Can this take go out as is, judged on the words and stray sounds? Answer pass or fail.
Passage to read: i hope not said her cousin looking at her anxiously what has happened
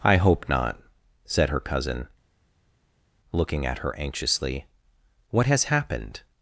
pass